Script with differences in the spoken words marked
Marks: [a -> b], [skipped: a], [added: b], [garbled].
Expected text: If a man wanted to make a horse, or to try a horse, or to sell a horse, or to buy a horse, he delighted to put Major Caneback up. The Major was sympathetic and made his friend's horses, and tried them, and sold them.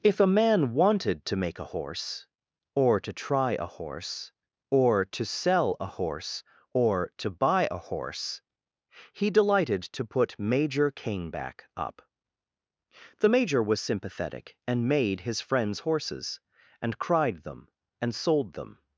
If a man wanted to make a horse, or to try a horse, or to sell a horse, or to buy a horse, he delighted to put Major Caneback up. The Major was sympathetic and made his friend's horses, and [tried -> cried] them, and sold them.